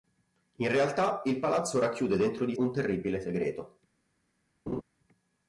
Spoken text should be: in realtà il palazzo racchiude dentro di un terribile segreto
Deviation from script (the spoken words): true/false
false